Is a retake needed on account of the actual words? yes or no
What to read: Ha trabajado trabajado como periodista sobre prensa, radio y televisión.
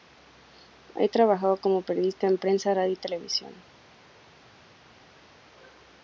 yes